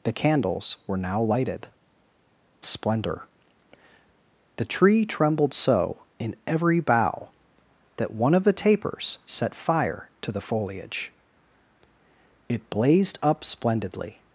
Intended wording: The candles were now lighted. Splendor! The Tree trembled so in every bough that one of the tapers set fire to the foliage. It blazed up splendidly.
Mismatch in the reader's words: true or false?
false